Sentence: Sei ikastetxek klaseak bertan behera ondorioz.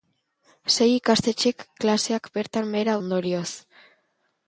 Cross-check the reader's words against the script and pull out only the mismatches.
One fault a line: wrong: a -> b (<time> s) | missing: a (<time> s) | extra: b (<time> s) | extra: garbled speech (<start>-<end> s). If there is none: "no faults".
no faults